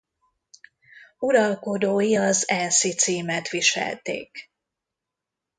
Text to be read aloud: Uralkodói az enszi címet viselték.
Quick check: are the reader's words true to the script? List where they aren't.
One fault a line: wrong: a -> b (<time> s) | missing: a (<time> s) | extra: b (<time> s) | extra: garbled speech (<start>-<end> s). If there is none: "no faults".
no faults